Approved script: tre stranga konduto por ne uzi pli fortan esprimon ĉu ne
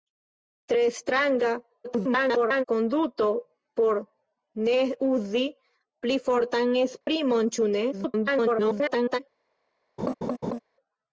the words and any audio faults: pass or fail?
fail